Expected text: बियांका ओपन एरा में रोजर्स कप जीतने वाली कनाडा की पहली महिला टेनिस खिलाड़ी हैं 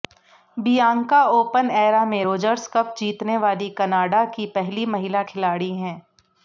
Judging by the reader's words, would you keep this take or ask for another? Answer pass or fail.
fail